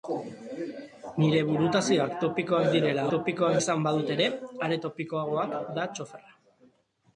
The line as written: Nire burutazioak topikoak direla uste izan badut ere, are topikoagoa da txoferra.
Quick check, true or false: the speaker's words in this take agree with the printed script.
false